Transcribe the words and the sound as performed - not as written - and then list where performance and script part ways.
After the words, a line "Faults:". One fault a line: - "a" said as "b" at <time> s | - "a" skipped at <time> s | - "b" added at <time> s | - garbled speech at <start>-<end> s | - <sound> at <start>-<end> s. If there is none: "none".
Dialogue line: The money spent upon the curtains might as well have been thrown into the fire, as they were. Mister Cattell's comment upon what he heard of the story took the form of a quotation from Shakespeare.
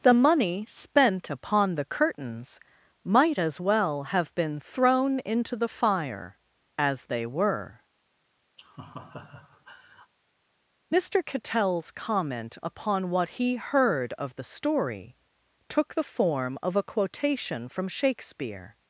The money spent upon the curtains might as well have been thrown into the fire, as they were. Mister Cattell's comment upon what he heard of the story took the form of a quotation from Shakespeare.
Faults:
- laugh at 8.6-10.1 s